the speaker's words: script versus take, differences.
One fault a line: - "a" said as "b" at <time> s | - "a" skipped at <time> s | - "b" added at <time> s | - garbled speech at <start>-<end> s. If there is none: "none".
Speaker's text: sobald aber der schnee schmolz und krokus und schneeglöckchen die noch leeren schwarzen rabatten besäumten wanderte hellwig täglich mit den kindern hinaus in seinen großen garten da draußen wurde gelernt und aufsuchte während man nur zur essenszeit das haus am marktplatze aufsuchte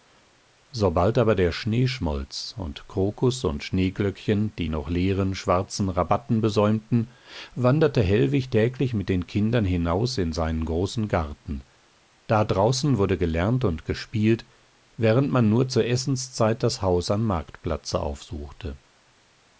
- "aufsuchte" said as "gespielt" at 13.8 s